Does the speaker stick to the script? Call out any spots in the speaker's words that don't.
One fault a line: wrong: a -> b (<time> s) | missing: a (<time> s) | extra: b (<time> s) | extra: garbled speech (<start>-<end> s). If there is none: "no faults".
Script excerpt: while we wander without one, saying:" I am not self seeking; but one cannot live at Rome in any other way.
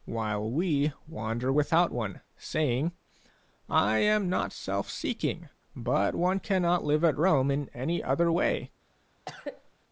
no faults